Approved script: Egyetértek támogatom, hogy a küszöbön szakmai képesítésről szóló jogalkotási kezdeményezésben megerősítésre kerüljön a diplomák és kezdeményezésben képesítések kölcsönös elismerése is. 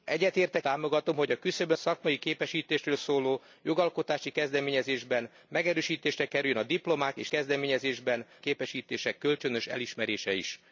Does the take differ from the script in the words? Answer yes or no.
no